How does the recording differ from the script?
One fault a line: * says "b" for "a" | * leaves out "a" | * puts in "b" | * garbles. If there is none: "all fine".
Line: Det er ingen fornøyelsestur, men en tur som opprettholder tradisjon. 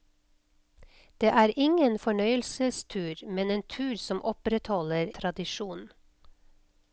all fine